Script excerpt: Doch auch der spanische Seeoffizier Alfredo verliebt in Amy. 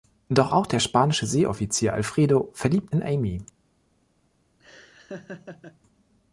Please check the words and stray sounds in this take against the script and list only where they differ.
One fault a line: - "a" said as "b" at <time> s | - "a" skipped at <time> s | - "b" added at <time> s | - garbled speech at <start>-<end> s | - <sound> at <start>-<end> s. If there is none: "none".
- laugh at 4.6-5.8 s